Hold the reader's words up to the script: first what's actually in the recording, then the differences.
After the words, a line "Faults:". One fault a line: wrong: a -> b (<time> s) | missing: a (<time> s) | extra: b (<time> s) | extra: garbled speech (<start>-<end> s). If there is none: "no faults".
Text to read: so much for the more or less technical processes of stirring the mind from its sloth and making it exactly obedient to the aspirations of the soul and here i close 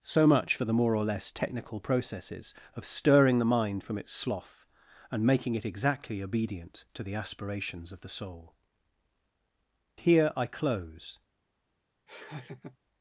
so much for the more or less technical processes of stirring the mind from its sloth and making it exactly obedient to the aspirations of the soul here i close
Faults:
missing: and (8.5 s)